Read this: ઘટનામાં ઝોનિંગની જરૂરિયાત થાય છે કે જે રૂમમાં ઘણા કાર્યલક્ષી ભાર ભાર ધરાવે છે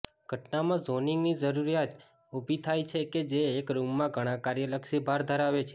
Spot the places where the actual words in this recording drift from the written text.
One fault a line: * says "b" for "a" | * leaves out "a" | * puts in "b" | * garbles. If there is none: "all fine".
* puts in "ઊભી"
* puts in "એક"
* leaves out "ભાર"